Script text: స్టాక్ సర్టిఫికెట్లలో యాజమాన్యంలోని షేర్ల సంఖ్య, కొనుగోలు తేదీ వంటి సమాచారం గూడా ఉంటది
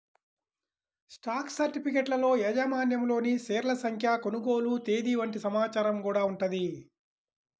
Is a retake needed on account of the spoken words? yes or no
no